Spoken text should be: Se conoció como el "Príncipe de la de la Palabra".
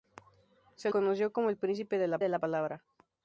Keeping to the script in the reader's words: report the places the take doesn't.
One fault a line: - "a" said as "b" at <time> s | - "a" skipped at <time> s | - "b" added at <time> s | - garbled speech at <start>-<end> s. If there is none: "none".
none